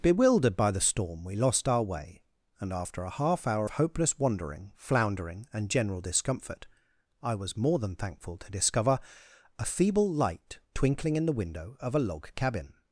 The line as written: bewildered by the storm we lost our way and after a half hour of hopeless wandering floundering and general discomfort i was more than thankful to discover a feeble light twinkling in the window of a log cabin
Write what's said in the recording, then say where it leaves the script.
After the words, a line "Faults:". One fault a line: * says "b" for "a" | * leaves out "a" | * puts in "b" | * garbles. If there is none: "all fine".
bewildered by the storm we lost our way and after a half hour hopeless wandering floundering and general discomfort i was more than thankful to discover a feeble light twinkling in the window of a log cabin
Faults:
* leaves out "of"